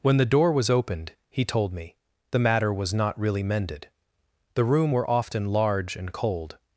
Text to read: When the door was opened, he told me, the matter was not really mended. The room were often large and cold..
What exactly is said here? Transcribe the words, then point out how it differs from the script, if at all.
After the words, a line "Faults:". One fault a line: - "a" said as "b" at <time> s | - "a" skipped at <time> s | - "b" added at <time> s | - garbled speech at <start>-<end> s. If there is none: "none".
When the door was opened, he told me, the matter was not really mended. The room were often large and cold..
Faults:
none